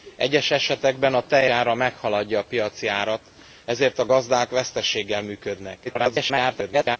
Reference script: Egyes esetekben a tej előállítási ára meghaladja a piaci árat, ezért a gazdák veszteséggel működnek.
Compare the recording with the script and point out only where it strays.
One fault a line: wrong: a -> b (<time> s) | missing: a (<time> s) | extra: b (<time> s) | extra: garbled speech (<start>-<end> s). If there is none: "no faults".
missing: előállítási (1.5 s)
extra: garbled speech (5.8-7.0 s)